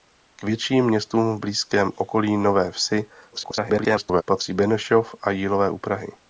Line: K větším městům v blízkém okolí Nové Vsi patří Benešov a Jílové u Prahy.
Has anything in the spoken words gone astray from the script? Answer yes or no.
yes